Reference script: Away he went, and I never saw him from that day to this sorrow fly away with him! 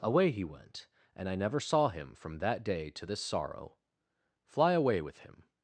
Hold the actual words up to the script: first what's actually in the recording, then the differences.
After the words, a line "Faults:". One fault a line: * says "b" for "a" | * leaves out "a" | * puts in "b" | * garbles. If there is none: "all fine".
Away he went, and I never saw him from that day to this sorrow fly away with him!
Faults:
all fine